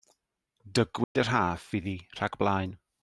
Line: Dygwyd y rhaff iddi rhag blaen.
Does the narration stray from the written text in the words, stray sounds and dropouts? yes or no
yes